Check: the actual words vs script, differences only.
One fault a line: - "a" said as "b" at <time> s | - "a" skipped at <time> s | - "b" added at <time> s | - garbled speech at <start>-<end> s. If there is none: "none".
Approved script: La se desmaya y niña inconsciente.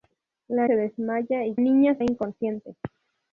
none